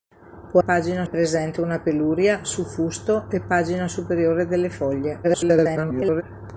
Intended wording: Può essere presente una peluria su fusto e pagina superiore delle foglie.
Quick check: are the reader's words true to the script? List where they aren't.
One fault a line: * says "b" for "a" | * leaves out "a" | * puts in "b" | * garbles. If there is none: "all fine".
* says "pagina" for "essere"
* garbles